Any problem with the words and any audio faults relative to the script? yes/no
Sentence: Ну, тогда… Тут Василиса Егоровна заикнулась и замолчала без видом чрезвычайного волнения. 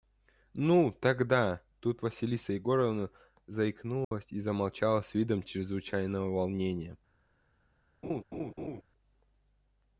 yes